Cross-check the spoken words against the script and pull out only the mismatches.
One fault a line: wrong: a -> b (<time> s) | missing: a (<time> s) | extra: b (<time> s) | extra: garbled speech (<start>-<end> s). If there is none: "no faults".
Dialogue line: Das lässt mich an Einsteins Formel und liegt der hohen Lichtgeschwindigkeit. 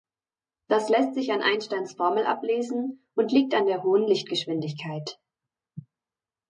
wrong: mich -> sich (1.1 s)
extra: ablesen (2.2 s)
extra: an (3.5 s)